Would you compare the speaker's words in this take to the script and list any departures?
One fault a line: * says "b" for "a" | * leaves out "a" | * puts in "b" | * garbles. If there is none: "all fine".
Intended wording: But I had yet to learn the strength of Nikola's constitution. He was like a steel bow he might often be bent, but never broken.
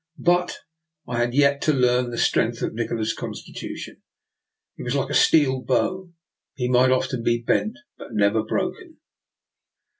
all fine